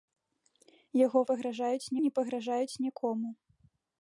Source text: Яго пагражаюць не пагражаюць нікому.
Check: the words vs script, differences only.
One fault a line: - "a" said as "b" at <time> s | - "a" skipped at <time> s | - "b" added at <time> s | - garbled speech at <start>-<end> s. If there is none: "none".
none